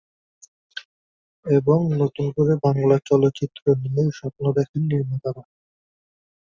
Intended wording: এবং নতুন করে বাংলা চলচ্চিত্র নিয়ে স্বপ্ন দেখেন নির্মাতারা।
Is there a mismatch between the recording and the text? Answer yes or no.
no